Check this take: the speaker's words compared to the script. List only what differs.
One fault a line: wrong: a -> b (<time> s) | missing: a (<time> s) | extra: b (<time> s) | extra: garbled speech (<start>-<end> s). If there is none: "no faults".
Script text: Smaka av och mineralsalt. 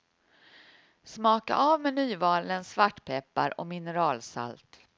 extra: med nymalen svartpeppar (1.8 s)